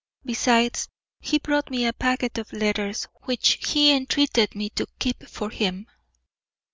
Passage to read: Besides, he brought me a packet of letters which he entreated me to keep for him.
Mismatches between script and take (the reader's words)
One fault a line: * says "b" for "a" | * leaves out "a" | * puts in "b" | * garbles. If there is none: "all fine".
all fine